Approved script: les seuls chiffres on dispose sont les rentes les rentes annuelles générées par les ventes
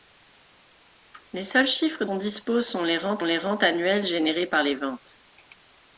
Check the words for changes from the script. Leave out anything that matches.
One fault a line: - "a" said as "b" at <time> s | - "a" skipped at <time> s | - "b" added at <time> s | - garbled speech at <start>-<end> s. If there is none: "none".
none